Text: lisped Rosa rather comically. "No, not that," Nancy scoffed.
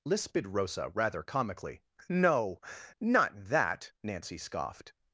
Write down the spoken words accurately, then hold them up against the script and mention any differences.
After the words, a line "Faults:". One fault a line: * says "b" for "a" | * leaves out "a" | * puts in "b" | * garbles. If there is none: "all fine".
lisped Rosa rather comically. "No, not that," Nancy scoffed.
Faults:
all fine